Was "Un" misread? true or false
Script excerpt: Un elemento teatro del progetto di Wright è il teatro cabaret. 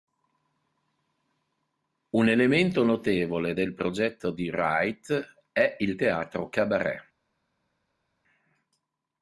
false